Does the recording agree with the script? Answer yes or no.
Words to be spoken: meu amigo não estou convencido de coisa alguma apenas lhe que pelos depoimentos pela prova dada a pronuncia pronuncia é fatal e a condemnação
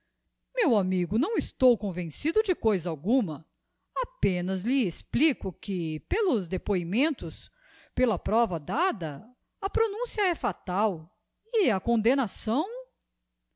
no